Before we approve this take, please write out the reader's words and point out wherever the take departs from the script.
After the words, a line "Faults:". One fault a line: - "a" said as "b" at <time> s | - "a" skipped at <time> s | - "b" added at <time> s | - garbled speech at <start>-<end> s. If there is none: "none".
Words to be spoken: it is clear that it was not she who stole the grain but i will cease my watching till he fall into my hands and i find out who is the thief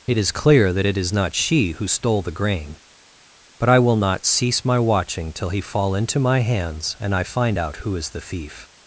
it is clear that it is not she who stole the grain but i will not cease my watching till he fall into my hands and i find out who is the thief
Faults:
- "was" said as "is" at 1.0 s
- "not" added at 4.0 s